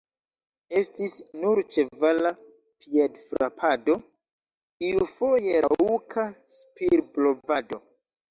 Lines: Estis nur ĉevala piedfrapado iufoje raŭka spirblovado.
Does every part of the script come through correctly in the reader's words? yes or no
yes